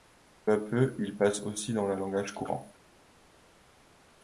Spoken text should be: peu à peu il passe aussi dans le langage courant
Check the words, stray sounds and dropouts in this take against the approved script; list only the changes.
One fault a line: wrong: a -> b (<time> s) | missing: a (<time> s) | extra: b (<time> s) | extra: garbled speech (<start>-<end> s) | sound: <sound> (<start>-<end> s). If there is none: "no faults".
no faults